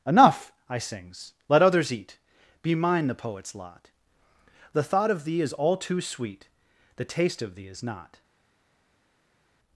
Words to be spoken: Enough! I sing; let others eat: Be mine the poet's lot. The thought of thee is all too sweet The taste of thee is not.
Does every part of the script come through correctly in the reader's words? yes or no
no